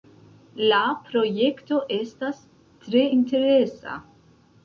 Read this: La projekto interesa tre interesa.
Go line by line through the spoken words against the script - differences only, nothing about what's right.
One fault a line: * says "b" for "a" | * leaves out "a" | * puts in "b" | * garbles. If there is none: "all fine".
* says "estas" for "interesa"